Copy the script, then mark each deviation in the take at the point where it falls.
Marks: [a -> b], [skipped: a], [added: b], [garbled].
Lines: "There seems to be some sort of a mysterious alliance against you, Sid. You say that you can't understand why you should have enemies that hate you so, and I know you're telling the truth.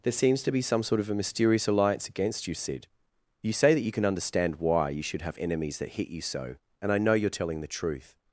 "There seems to be some sort of a mysterious alliance against you, Sid. You say that you [can't -> can] understand why you should have enemies that [hate -> hit] you so, and I know you're telling the truth.